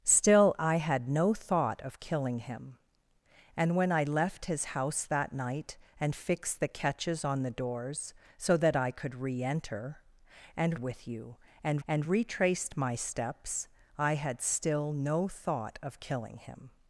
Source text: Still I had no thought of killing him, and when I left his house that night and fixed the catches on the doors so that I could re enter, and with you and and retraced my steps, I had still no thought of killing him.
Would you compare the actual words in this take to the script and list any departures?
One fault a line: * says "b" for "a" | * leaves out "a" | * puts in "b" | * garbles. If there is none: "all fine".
all fine